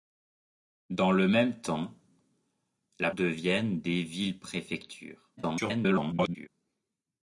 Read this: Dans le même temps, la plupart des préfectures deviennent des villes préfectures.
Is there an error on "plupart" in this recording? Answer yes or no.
yes